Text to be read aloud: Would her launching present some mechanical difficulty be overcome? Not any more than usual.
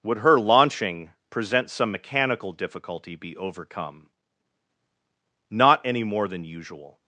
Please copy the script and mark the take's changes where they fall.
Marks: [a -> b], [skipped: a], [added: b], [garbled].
Would her launching present some mechanical difficulty be overcome? Not any more than usual.